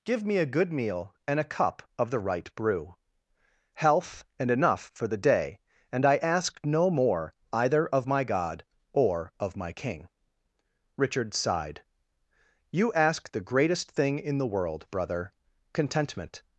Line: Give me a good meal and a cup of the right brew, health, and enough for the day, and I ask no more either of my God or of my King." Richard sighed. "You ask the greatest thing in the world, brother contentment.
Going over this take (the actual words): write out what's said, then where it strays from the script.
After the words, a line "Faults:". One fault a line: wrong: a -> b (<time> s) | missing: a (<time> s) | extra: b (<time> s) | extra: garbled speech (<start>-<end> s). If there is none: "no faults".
Give me a good meal and a cup of the right brew, health, and enough for the day, and I ask no more either of my God or of my King." Richard sighed. "You ask the greatest thing in the world, brother contentment.
Faults:
no faults